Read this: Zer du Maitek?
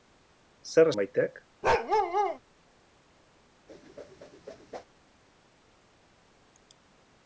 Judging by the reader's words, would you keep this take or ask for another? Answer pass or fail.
pass